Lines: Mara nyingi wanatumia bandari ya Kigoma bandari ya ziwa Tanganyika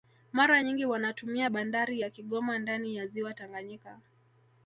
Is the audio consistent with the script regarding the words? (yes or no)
no